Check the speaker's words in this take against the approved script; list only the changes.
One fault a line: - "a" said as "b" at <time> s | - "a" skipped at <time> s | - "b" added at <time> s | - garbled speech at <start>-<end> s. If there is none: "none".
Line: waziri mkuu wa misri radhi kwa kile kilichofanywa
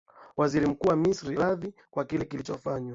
none